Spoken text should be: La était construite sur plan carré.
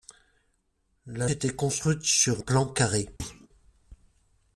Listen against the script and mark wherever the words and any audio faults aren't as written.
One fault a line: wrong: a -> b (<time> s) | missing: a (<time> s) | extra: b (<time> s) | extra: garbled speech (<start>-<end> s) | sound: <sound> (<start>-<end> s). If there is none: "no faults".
sound: thud (3.2-3.5 s)